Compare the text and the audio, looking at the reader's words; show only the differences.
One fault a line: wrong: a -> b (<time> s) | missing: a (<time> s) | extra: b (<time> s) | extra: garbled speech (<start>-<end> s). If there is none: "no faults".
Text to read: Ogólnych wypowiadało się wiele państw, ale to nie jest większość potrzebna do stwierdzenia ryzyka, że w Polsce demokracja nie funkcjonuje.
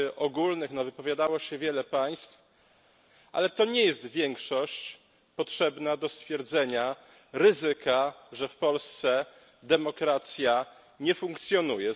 no faults